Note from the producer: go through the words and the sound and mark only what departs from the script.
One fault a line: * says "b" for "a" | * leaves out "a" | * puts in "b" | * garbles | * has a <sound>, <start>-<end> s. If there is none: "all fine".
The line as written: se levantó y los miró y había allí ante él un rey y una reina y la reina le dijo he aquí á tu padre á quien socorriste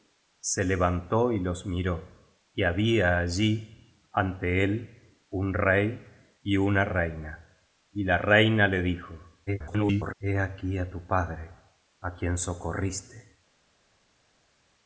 * garbles